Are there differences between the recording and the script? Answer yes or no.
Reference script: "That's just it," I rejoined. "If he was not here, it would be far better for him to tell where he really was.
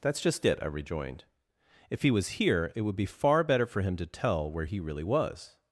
yes